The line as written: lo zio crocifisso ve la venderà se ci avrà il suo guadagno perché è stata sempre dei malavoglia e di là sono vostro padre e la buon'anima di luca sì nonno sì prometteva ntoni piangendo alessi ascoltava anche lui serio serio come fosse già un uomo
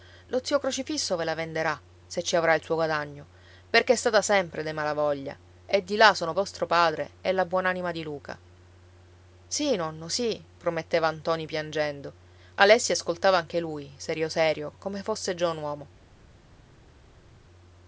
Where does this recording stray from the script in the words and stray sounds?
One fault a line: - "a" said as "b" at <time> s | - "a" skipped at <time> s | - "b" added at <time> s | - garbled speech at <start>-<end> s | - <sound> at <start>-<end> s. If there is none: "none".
none